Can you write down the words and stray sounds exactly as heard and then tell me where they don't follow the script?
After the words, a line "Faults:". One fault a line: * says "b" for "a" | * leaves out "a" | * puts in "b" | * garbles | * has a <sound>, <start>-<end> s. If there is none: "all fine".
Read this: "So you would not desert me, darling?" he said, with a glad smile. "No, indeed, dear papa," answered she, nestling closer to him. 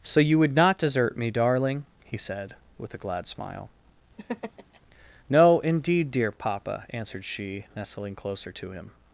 "So you would not desert me, darling?" he said, with a glad smile. "No, indeed, dear papa," answered she, nestling closer to him.
Faults:
* has a laugh, 4.2-4.8 s